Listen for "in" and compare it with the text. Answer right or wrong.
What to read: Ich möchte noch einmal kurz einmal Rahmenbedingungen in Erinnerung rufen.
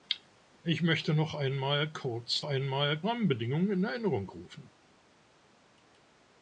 right